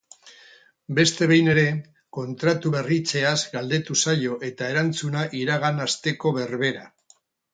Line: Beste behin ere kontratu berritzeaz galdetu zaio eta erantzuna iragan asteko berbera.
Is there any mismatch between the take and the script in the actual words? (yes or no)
no